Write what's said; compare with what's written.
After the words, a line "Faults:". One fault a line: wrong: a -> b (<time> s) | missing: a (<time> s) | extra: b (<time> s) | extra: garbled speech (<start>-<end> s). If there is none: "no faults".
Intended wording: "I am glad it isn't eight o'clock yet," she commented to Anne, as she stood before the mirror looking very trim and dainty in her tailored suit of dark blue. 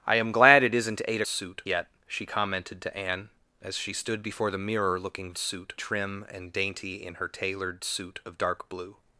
"I am glad it isn't eight suit yet," she commented to Anne, as she stood before the mirror looking suit trim and dainty in her tailored suit of dark blue.
Faults:
wrong: o'clock -> suit (1.2 s)
wrong: very -> suit (5.4 s)